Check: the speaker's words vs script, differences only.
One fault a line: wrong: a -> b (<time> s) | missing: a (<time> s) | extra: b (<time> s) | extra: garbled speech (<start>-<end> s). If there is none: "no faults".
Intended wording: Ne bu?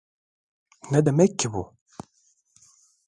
extra: demek ki (1.1 s)